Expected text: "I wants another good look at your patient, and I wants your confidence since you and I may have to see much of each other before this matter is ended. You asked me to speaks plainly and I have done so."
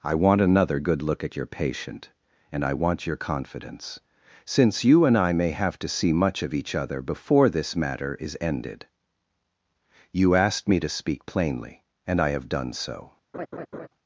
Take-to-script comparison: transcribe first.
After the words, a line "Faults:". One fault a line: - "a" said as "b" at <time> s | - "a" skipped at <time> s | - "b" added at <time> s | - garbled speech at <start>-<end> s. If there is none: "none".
"I want another good look at your patient, and I want your confidence since you and I may have to see much of each other before this matter is ended. You asked me to speak plainly and I have done so."
Faults:
- "wants" said as "want" at 0.1 s
- "wants" said as "want" at 2.7 s
- "speaks" said as "speak" at 10.9 s